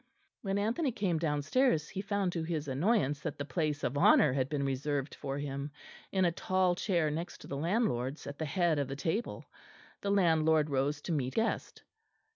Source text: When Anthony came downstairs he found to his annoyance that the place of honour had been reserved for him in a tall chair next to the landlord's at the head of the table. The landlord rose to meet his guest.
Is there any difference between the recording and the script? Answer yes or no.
yes